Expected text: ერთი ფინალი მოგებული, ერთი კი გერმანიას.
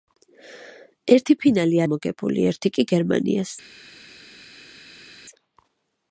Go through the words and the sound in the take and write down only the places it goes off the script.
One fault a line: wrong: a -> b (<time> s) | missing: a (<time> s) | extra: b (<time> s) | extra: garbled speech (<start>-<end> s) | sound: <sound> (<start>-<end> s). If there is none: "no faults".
no faults